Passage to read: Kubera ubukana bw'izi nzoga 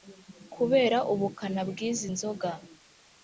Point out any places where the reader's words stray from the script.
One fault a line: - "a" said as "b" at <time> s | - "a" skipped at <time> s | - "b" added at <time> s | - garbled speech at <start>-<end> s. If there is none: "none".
none